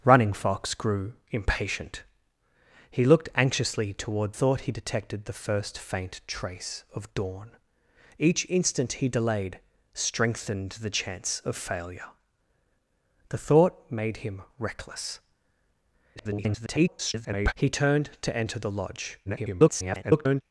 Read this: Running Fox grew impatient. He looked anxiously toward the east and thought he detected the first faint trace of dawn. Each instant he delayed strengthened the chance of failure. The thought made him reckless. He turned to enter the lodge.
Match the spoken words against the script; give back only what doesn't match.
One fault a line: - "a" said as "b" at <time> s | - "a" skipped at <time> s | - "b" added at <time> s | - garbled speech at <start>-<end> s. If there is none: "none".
- "the east and" skipped at 4.3 s
- garbled speech at 16.2-17.5 s
- garbled speech at 19.2-20.4 s